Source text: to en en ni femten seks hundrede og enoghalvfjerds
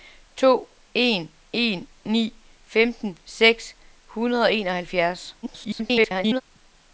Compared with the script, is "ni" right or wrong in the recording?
right